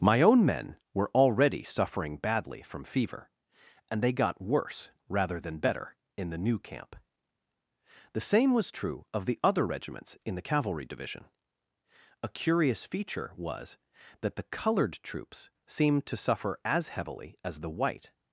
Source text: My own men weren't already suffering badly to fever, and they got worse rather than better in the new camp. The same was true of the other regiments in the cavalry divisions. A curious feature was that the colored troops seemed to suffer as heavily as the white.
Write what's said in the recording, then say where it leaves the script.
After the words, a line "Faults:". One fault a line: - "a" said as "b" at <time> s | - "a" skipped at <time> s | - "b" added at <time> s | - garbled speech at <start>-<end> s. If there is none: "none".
My own men were already suffering badly from fever, and they got worse rather than better in the new camp. The same was true of the other regiments in the cavalry division. A curious feature was that the colored troops seemed to suffer as heavily as the white.
Faults:
- "weren't" said as "were" at 0.9 s
- "to" said as "from" at 2.6 s
- "divisions" said as "division" at 10.8 s